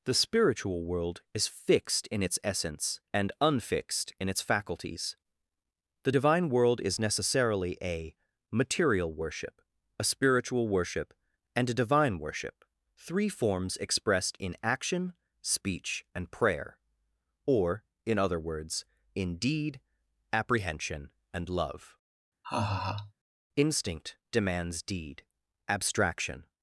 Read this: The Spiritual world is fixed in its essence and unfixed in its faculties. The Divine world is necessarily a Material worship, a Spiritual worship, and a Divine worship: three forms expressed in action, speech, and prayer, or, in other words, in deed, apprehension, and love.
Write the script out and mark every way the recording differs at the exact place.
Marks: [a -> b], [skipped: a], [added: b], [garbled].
The Spiritual world is fixed in its essence and unfixed in its faculties. The Divine world is necessarily a Material worship, a Spiritual worship, and a Divine worship: three forms expressed in action, speech, and prayer, or, in other words, in deed, apprehension, and love. [added: Instinct demands deed Abstraction]